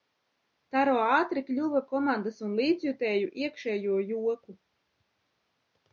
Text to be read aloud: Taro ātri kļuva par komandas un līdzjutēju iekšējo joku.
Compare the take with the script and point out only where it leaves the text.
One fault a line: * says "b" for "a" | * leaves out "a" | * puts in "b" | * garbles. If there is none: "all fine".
* leaves out "par"